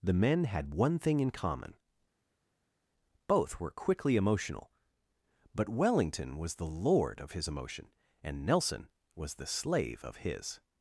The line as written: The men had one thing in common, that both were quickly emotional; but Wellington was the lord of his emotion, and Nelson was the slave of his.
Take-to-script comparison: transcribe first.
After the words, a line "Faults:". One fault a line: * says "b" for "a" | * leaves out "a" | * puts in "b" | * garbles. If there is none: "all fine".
The men had one thing in common, both were quickly emotional; but Wellington was the lord of his emotion, and Nelson was the slave of his.
Faults:
* leaves out "that"